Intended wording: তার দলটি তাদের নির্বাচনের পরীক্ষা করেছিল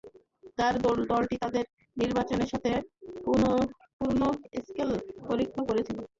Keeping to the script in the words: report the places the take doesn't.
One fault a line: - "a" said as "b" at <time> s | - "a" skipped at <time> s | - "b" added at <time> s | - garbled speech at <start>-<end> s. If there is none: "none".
- "সাথে পূর্ণ স্কেল" added at 2.5 s